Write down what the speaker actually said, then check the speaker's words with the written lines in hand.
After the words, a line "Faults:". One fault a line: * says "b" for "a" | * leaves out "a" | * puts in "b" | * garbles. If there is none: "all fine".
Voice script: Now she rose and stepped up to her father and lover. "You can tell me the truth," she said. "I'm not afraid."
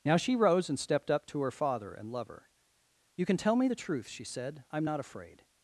Now she rose and stepped up to her father and lover. "You can tell me the truth," she said. "I'm not afraid."
Faults:
all fine